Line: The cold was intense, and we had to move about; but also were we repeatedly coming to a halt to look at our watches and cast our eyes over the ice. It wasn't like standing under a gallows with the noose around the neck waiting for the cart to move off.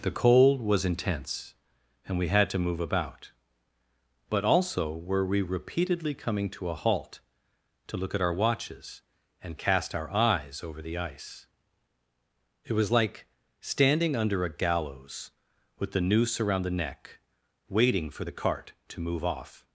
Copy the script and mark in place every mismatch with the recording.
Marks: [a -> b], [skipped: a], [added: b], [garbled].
The cold was intense, and we had to move about; but also were we repeatedly coming to a halt to look at our watches and cast our eyes over the ice. It [wasn't -> was] like standing under a gallows with the noose around the neck waiting for the cart to move off.